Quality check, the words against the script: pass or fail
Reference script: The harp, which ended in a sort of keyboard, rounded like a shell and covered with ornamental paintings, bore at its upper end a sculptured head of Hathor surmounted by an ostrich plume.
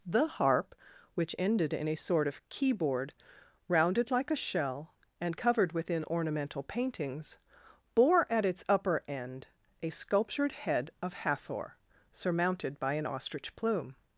fail